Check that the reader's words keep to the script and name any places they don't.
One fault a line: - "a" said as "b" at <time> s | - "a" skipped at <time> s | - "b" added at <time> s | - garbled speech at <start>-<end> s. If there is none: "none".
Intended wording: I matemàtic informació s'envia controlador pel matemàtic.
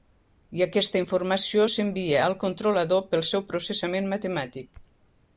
- "matemàtic" said as "aquesta" at 0.7 s
- "al" added at 2.3 s
- "seu processament" added at 3.3 s